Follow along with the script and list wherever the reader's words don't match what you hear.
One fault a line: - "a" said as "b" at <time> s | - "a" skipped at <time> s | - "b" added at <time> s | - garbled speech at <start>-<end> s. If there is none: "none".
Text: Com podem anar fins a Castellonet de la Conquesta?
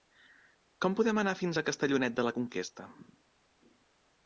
none